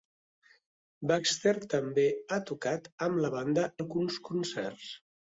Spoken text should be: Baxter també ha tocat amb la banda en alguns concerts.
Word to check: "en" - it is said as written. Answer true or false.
false